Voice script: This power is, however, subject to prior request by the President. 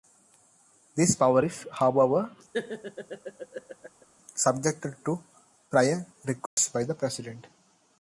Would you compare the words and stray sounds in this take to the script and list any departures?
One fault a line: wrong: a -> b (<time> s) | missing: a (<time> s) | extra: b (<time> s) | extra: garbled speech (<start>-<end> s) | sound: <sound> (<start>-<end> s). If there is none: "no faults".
sound: laugh (2.5-4.1 s)
sound: dropout (6.5-6.6 s)